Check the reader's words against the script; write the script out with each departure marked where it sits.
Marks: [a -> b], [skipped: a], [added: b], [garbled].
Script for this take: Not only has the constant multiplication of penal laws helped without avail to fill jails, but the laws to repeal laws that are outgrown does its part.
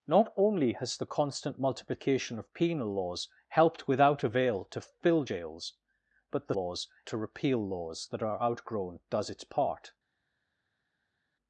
Not only has the constant multiplication of penal laws helped without avail to fill jails, but the laws to repeal laws that are outgrown does its part.